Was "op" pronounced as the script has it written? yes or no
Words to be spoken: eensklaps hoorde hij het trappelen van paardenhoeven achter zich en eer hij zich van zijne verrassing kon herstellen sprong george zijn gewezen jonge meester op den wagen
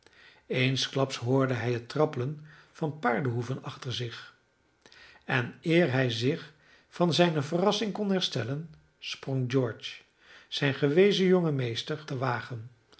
no